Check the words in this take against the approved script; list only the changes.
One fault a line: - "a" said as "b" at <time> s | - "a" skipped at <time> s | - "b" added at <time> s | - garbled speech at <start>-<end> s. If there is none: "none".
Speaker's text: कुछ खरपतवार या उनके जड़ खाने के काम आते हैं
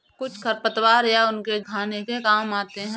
- "जड़" skipped at 1.6 s